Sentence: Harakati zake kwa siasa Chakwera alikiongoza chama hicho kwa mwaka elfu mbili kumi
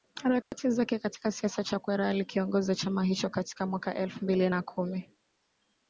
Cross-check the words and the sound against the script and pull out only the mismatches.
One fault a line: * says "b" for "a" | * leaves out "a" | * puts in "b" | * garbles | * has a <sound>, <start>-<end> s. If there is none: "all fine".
* has a dropout, 0.4-0.5 s
* says "katika" for "kwa"
* says "katika" for "kwa"
* puts in "na"